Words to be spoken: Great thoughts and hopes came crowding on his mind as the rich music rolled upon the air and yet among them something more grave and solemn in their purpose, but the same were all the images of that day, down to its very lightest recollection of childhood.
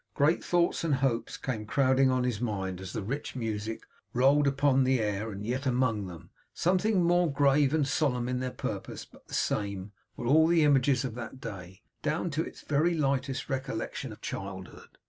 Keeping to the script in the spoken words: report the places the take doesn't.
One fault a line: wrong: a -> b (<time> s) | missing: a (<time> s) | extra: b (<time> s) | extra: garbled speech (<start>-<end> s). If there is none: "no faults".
no faults